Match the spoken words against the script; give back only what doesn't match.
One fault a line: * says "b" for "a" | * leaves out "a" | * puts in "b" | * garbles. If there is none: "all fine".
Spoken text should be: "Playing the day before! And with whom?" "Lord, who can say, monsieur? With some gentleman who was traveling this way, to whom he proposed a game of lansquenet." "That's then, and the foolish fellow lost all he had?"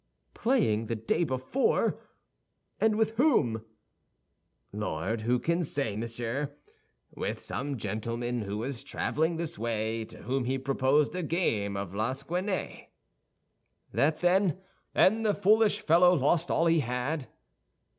all fine